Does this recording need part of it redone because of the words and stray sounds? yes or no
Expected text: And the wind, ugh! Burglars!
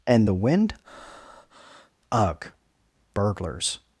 yes